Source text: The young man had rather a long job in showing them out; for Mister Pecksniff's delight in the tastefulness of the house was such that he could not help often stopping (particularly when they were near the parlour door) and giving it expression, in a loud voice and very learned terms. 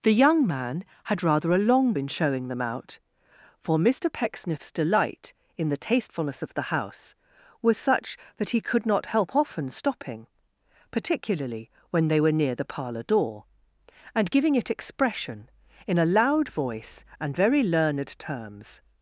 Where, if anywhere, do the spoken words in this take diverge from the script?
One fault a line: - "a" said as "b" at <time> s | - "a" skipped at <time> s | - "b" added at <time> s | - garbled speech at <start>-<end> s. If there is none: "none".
- "job" skipped at 1.9 s